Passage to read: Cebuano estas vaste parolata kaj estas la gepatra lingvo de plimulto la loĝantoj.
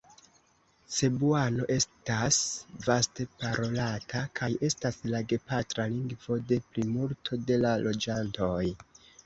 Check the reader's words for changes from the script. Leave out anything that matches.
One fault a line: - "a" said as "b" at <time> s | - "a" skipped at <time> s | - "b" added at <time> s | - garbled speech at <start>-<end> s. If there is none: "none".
- "de" added at 7.5 s